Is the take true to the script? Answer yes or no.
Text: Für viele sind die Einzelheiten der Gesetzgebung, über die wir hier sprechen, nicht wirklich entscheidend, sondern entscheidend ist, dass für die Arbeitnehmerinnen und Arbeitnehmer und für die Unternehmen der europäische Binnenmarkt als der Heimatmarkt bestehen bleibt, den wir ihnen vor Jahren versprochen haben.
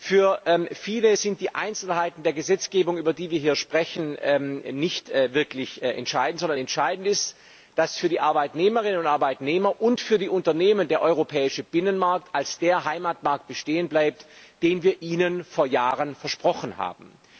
yes